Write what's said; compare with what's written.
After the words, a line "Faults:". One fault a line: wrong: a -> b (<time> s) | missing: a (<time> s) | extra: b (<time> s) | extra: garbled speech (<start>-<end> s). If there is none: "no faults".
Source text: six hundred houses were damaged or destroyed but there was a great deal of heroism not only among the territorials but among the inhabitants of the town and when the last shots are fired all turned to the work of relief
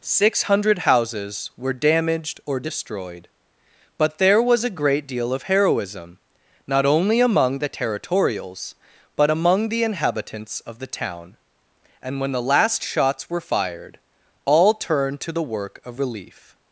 six hundred houses were damaged or destroyed but there was a great deal of heroism not only among the territorials but among the inhabitants of the town and when the last shots were fired all turned to the work of relief
Faults:
wrong: are -> were (13.3 s)